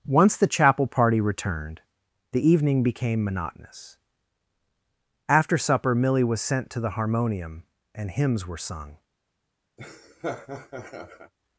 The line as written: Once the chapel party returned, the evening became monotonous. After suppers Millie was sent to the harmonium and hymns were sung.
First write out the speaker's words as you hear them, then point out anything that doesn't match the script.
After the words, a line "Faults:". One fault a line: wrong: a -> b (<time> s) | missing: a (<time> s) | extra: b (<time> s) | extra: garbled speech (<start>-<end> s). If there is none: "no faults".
Once the chapel party returned, the evening became monotonous. After supper Millie was sent to the harmonium and hymns were sung.
Faults:
wrong: suppers -> supper (5.6 s)